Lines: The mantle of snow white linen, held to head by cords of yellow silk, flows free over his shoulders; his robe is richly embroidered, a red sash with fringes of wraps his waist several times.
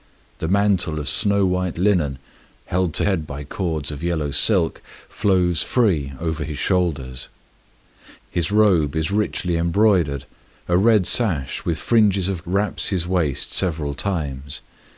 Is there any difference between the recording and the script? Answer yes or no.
no